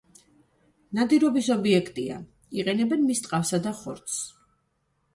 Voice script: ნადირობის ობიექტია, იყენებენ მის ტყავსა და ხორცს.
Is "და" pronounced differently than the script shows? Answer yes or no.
no